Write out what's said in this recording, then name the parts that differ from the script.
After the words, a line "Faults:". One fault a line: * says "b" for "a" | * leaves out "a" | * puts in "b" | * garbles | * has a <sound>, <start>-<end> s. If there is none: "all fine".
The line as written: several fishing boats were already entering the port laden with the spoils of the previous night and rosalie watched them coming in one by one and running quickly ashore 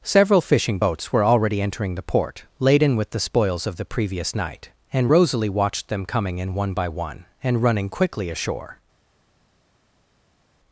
several fishing boats were already entering the port laden with the spoils of the previous night and rosalie watched them coming in one by one and running quickly ashore
Faults:
all fine